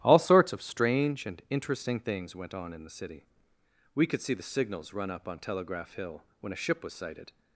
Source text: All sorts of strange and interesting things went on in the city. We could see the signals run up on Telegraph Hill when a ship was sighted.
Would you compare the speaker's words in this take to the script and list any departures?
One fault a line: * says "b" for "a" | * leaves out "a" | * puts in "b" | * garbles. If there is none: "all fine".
all fine